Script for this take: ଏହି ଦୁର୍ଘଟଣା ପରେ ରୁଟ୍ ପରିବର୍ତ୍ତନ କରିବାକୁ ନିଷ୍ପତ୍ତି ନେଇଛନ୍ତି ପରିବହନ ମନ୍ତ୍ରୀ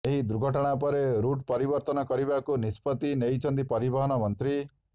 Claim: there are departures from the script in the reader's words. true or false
false